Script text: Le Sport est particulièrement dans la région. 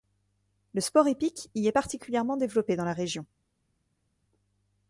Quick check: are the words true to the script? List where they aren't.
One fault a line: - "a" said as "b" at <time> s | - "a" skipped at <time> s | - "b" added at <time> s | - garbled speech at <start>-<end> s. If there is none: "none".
- "hippique y" added at 1.1 s
- "développé" added at 2.4 s